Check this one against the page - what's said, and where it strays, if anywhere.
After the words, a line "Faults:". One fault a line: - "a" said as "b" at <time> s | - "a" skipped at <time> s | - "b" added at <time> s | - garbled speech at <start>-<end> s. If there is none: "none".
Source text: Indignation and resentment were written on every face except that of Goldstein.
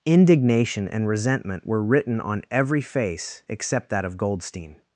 Indignation and resentment were written on every face except that of Goldstein.
Faults:
none